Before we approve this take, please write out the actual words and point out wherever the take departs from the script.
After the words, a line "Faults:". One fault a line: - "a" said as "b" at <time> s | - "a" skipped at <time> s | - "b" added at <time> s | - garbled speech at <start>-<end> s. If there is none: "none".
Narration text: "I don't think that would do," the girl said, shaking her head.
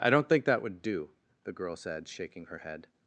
"I don't think that would do," the girl said, shaking her head.
Faults:
none